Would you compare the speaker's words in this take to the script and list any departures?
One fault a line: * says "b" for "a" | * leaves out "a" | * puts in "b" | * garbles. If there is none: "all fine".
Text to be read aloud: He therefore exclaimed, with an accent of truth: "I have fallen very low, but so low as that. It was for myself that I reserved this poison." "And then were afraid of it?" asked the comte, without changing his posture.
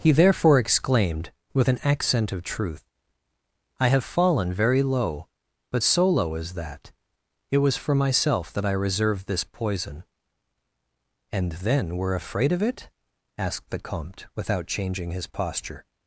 all fine